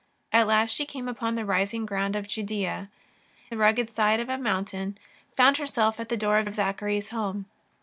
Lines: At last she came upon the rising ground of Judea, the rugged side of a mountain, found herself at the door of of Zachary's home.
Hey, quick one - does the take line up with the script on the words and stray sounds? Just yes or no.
yes